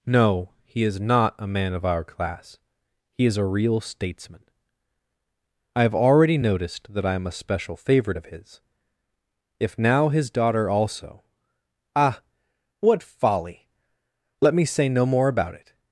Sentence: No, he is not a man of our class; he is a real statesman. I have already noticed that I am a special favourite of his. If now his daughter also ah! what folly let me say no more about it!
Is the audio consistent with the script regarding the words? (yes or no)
yes